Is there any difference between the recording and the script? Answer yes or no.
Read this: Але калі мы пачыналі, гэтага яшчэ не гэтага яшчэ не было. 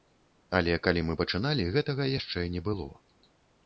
yes